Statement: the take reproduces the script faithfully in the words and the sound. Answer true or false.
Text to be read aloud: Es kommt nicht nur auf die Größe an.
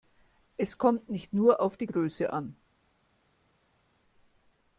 true